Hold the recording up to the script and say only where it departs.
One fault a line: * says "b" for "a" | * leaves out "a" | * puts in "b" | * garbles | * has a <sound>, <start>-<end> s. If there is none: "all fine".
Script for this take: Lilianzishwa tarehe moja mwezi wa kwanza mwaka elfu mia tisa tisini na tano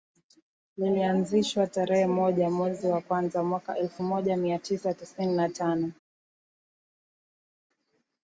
* puts in "moja"